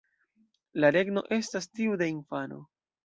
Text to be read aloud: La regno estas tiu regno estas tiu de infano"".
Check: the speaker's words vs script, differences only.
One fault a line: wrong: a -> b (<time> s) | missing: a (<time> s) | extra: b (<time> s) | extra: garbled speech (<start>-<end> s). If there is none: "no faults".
missing: regno estas tiu (2.0 s)